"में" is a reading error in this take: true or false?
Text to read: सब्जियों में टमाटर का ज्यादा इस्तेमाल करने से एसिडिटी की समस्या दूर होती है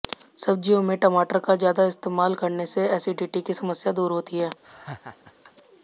false